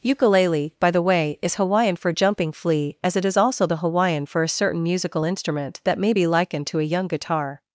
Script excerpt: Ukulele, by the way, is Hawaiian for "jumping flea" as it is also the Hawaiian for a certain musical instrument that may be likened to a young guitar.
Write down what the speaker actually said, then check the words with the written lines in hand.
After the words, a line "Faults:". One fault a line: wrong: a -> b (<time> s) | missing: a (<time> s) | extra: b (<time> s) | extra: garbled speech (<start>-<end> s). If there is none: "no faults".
Ukulele, by the way, is Hawaiian for "jumping flea" as it is also the Hawaiian for a certain musical instrument that may be likened to a young guitar.
Faults:
no faults